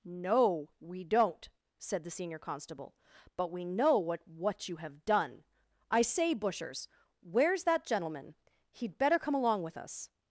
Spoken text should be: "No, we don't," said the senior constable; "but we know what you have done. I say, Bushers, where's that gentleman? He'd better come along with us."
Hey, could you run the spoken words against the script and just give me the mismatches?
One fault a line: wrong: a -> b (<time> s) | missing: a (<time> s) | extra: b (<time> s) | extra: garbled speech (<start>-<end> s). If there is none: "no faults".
extra: what (4.3 s)